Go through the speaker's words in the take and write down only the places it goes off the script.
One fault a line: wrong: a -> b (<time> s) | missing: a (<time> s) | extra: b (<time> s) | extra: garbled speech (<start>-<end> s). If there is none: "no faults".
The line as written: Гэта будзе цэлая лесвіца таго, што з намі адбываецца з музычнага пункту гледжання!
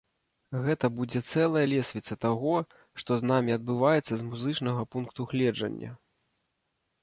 no faults